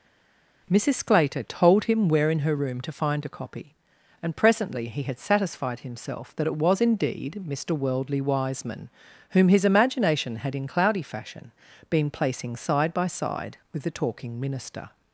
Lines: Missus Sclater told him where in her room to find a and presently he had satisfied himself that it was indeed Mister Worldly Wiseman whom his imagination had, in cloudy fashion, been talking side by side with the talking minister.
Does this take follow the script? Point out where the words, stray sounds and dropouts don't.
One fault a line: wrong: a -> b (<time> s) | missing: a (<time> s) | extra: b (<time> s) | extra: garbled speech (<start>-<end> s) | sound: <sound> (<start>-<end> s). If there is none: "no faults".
extra: copy (3.3 s)
wrong: talking -> placing (12.1 s)